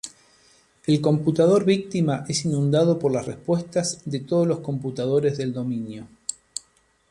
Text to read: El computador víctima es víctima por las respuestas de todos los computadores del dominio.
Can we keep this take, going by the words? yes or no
no